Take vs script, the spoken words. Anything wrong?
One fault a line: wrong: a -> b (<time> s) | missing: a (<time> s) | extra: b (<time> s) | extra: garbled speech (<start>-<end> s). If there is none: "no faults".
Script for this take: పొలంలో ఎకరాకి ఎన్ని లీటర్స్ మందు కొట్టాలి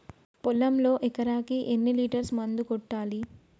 no faults